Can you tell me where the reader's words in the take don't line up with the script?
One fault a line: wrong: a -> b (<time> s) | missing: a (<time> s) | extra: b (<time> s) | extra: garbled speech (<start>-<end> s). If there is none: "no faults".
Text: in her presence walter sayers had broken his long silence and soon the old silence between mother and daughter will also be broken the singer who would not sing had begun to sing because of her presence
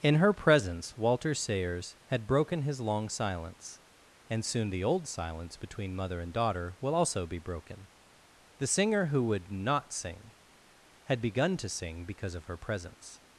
no faults